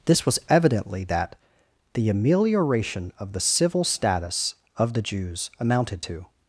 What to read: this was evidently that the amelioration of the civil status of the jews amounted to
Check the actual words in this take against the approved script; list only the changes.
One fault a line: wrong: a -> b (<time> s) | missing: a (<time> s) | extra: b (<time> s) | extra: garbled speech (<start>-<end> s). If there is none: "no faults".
no faults